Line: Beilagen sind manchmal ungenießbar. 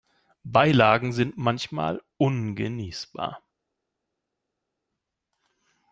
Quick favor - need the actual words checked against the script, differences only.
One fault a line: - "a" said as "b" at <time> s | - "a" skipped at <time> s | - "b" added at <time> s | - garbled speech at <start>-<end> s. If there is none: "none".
none